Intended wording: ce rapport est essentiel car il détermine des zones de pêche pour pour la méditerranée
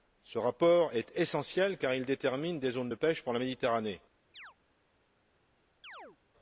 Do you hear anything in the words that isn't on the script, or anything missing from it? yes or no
yes